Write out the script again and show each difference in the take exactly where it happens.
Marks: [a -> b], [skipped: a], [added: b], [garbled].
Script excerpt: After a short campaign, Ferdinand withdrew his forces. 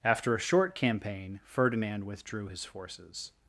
After a short campaign, Ferdinand withdrew his forces.